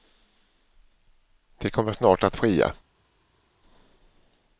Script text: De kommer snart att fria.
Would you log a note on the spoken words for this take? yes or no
no